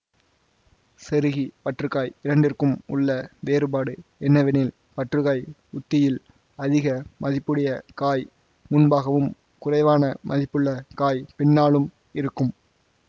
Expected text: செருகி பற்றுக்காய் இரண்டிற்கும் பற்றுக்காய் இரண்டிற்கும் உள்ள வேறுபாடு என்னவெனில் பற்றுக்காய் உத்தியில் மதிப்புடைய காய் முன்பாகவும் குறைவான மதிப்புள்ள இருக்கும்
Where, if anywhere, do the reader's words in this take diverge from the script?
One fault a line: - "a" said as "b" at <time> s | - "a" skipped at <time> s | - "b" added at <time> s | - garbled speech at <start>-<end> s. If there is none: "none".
- "பற்றுக்காய் இரண்டிற்கும்" skipped at 2.7 s
- "அதிக" added at 6.6 s
- "காய் பின்னாலும்" added at 10.9 s